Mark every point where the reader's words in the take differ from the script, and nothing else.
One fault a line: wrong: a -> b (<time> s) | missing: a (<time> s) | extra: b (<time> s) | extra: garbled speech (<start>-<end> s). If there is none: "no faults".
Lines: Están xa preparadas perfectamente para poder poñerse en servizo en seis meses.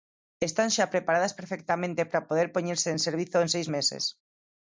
no faults